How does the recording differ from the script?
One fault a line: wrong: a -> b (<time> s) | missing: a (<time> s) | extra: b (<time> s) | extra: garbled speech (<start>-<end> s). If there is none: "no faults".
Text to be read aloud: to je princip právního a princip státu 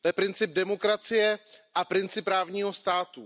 wrong: právního -> demokracie (0.5 s)
extra: právního (2.2 s)